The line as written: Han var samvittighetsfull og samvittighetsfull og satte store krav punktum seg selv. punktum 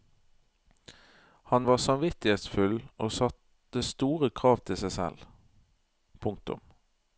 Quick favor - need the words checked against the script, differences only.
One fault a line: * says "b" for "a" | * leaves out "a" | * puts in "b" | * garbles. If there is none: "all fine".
* leaves out "samvittighetsfull og"
* says "til" for "punktum"